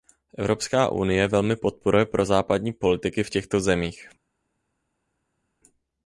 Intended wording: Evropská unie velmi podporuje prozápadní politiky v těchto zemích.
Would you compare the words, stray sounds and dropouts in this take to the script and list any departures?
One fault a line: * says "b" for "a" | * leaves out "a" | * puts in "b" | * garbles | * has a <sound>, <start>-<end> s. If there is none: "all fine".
all fine